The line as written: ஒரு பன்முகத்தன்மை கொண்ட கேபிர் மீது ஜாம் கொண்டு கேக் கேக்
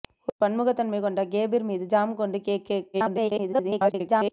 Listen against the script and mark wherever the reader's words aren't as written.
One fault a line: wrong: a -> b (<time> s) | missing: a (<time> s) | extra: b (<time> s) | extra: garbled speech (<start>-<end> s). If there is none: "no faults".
extra: garbled speech (2.9-4.3 s)